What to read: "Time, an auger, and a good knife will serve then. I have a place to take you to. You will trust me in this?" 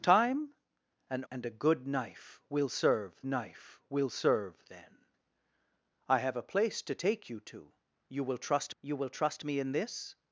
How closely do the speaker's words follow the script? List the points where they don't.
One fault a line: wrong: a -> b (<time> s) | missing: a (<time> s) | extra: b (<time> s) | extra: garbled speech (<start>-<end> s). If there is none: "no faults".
missing: auger (1.2 s)
extra: knife will serve (3.3 s)
extra: you will trust (8.8 s)